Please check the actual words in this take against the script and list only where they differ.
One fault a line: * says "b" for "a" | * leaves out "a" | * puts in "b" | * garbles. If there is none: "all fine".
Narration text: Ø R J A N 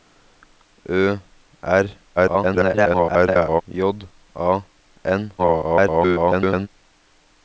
* garbles
* garbles